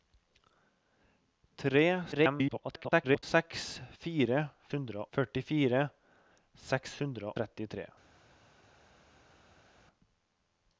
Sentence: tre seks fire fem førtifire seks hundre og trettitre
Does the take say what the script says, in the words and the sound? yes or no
no